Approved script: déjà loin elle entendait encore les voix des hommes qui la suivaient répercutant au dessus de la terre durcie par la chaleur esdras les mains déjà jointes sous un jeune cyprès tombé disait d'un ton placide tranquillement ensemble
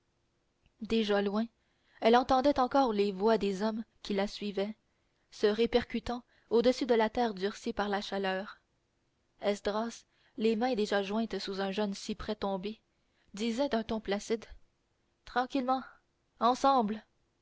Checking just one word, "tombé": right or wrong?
right